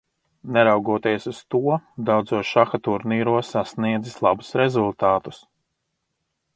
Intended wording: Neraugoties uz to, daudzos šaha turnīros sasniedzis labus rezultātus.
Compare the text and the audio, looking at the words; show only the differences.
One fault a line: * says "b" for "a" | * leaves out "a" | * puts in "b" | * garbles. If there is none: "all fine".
all fine